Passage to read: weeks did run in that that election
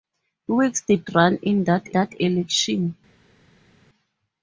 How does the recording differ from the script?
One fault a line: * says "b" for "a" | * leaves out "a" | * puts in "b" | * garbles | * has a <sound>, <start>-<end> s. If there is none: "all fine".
all fine